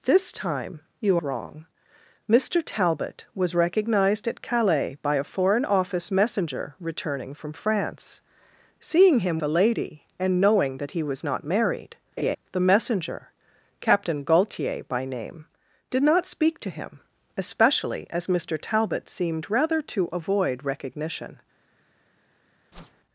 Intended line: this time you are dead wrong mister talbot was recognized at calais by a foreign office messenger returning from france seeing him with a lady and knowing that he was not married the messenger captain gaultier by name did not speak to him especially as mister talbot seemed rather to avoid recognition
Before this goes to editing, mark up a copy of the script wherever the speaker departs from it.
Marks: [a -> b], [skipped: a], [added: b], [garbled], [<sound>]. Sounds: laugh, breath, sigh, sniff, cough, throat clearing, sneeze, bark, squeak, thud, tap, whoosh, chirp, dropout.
this time you [skipped: are dead] wrong mister talbot was recognized at calais by a foreign office messenger returning from france seeing him [skipped: with] a lady and knowing that he was not married [laugh] the messenger captain gaultier by name did not speak to him especially as mister talbot seemed rather to avoid recognition [whoosh]